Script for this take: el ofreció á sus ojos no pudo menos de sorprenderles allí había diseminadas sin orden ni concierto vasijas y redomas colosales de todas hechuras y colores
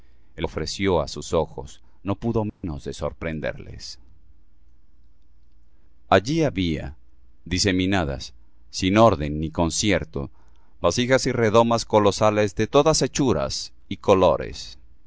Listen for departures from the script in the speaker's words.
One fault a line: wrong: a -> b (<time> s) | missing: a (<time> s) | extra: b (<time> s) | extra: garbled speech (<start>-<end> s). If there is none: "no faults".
no faults